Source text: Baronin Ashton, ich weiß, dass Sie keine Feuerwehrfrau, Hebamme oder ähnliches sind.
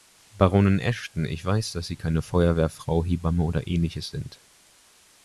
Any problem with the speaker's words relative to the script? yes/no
no